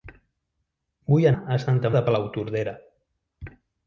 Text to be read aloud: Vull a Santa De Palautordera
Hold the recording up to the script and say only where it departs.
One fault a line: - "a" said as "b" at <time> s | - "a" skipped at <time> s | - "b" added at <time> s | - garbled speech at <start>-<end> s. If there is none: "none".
none